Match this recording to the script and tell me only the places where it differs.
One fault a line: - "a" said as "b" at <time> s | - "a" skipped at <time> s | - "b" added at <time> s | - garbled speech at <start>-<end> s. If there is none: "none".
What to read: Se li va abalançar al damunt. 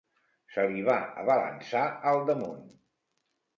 none